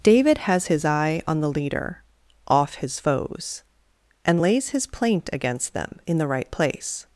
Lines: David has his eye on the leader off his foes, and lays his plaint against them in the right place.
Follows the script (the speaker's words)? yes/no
yes